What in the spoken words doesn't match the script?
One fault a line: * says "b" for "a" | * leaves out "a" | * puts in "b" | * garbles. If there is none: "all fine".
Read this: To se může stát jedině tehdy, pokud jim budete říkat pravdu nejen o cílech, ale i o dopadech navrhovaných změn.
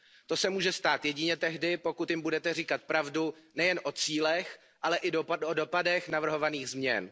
all fine